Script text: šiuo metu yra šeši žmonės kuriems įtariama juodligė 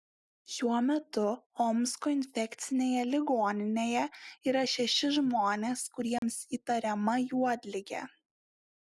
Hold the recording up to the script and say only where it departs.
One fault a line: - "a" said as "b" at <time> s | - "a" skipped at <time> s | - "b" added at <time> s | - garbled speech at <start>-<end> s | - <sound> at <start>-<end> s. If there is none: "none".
- "omsko infekcinėje ligoninėje" added at 1.6 s
- dropout at 6.2-6.2 s